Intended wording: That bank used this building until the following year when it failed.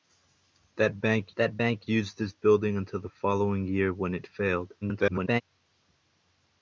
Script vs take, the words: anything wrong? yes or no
yes